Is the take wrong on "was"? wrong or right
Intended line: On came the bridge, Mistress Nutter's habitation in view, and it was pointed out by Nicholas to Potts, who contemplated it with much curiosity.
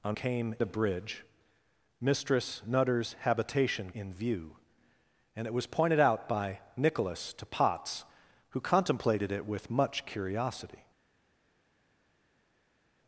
right